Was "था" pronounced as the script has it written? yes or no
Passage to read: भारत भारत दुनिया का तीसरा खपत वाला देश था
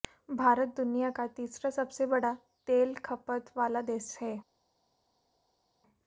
no